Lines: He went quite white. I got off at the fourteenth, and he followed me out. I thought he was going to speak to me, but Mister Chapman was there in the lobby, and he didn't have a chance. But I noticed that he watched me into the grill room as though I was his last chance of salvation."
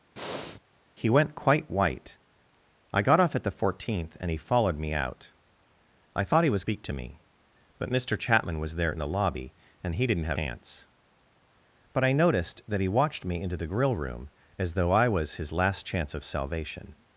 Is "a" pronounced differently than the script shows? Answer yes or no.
yes